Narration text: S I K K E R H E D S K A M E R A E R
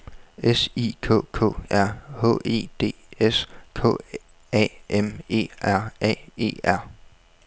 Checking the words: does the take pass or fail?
fail